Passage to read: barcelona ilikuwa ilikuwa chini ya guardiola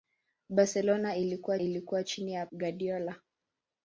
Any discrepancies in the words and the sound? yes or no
no